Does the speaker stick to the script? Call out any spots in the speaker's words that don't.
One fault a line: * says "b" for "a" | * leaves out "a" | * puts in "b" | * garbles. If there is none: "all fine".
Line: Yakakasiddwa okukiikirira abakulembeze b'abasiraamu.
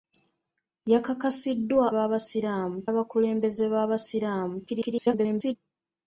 * says "b'abasiraamu" for "okukiikirira"
* garbles